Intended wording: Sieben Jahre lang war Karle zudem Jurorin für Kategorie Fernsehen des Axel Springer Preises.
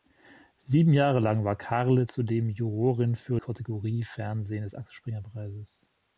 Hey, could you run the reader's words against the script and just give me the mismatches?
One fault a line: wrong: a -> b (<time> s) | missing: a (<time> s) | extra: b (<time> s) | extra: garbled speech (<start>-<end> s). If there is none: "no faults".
no faults